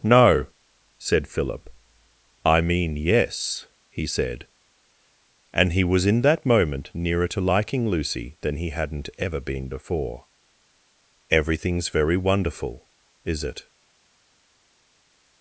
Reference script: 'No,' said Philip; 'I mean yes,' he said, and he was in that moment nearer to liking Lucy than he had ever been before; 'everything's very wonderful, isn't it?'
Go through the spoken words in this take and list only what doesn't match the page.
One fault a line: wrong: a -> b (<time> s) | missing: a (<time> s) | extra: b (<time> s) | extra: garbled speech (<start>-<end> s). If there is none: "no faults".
wrong: had -> hadn't (8.7 s)
wrong: isn't -> is (13.3 s)